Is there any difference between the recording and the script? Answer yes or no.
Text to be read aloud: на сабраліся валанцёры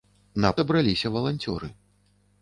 no